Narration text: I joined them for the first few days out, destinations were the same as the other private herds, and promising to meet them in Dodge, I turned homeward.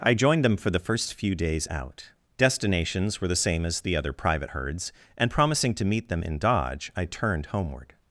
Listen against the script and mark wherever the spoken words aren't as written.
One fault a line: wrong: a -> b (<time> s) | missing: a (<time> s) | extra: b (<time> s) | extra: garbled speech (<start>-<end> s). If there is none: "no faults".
no faults